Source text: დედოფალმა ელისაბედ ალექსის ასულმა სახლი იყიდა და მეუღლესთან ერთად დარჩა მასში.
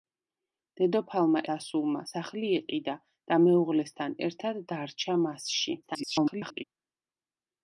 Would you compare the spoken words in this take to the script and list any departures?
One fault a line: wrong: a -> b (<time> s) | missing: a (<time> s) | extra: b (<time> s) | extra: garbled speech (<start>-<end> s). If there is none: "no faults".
missing: ელისაბედ ალექსის (1.4 s)
extra: garbled speech (5.8-6.6 s)